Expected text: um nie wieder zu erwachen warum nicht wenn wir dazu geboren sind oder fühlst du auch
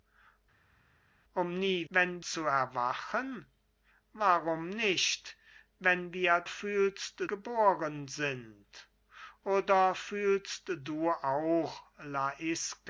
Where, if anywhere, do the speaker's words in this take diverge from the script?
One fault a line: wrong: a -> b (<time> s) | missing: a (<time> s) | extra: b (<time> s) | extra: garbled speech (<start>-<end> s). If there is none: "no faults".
wrong: wieder -> wenn (1.9 s)
wrong: dazu -> fühlst (6.5 s)